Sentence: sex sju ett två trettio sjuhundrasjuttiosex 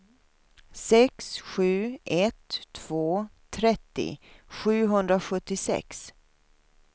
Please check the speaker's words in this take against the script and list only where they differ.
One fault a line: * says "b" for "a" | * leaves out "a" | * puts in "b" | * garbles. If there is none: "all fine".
all fine